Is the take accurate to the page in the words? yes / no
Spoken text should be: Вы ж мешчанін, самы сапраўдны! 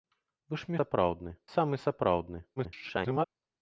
no